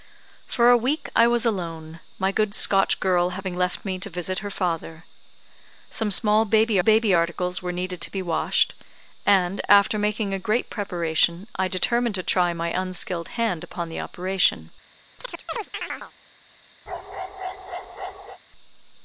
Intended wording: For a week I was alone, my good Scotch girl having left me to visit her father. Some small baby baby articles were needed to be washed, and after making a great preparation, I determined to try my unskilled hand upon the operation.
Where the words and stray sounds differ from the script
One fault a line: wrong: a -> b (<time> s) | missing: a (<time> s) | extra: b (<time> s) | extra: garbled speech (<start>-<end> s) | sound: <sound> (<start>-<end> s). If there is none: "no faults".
sound: chirp (15.2-16.1 s)
sound: bark (16.9-18.4 s)